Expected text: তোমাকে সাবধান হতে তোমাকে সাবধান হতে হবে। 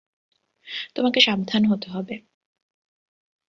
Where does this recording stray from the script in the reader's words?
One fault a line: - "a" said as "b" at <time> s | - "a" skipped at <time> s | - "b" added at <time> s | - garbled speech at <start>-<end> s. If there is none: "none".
- "তোমাকে সাবধান হতে" skipped at 1.9 s